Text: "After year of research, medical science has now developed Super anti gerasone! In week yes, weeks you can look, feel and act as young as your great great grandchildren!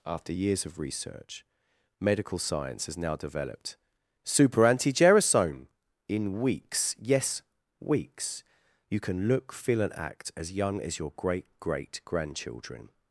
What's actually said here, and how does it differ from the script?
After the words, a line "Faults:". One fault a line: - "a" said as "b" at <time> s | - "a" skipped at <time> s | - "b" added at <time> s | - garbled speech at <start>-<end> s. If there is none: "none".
"After years of research, medical science has now developed Super anti gerasone! In weeks yes, weeks you can look, feel and act as young as your great great grandchildren!
Faults:
- "year" said as "years" at 0.3 s
- "week" said as "weeks" at 6.4 s